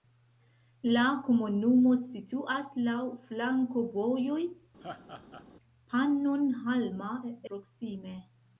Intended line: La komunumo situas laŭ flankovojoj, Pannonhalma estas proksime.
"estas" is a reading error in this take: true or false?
true